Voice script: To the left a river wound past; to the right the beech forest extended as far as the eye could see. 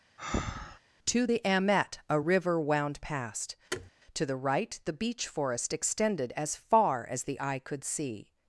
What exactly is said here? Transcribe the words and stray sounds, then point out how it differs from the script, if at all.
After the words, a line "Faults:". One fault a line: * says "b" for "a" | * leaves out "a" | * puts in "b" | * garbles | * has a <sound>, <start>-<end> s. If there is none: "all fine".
To the amet a river wound past; to the right the beech forest extended as far as the eye could see.
Faults:
* has a breath, 0.2-0.8 s
* says "amet" for "left"
* has a thud, 3.7-3.9 s